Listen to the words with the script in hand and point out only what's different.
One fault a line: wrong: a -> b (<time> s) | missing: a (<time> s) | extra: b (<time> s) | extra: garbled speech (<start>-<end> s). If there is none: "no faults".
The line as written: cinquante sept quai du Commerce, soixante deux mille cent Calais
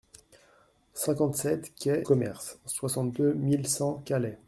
missing: du (2.0 s)